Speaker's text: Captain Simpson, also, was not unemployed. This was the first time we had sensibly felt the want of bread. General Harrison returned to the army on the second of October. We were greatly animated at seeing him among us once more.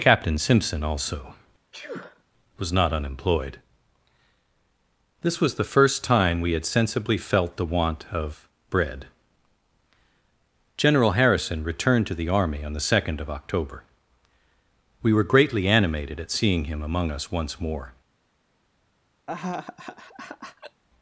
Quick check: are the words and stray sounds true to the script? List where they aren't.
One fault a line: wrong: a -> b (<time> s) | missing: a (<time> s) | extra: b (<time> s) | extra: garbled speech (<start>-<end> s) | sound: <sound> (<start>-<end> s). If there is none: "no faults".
sound: sneeze (1.7-2.2 s)
sound: laugh (19.3-20.8 s)